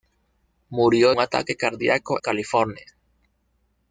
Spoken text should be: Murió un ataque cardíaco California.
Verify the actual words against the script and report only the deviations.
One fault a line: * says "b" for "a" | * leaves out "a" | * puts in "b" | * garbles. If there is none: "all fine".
all fine